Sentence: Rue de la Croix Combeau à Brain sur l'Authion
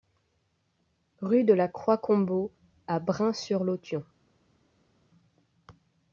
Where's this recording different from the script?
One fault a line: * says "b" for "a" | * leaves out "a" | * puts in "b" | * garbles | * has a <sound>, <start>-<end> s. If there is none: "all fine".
all fine